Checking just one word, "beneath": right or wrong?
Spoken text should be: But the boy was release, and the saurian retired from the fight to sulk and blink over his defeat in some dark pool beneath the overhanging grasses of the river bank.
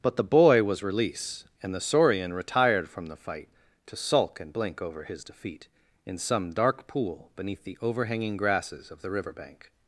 right